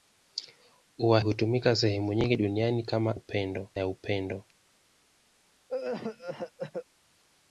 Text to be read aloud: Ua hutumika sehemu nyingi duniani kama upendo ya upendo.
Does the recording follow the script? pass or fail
pass